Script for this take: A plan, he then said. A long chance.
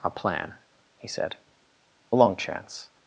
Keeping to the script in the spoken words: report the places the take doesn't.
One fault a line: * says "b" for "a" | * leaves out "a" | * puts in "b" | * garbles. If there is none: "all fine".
* leaves out "then"